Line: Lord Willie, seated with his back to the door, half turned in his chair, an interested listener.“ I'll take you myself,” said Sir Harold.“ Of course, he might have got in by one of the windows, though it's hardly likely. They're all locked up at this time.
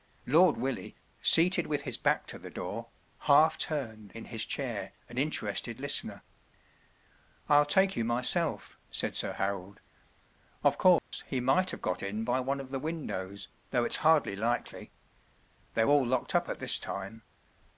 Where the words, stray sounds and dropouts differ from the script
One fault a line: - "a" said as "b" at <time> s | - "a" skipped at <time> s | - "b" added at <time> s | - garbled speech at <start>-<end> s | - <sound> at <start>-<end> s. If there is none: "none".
- dropout at 11.0-11.1 s